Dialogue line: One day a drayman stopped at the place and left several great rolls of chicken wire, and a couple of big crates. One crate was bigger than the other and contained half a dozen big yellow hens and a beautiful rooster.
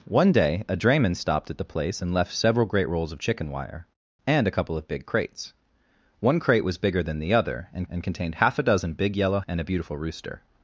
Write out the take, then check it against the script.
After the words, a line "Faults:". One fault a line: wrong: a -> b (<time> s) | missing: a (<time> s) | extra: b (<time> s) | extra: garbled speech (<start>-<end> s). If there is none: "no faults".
One day a drayman stopped at the place and left several great rolls of chicken wire, and a couple of big crates. One crate was bigger than the other and and contained half a dozen big yellow and a beautiful rooster.
Faults:
extra: and (7.9 s)
missing: hens (9.4 s)